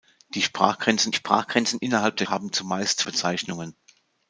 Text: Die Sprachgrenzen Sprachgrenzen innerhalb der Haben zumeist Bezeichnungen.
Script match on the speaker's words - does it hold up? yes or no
yes